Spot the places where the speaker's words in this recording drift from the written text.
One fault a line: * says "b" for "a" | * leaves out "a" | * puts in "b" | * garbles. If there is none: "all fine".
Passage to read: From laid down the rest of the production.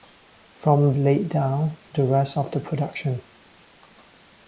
all fine